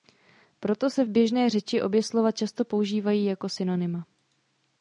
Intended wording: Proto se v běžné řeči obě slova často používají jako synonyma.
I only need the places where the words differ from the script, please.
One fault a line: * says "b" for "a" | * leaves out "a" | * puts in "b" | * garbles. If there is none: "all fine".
all fine